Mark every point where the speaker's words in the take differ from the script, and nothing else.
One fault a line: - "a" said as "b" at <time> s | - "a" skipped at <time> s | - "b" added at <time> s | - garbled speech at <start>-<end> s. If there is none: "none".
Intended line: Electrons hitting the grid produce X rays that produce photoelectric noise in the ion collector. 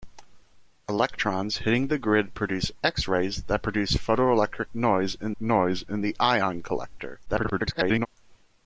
- "noise in" added at 5.4 s
- garbled speech at 7.3-8.1 s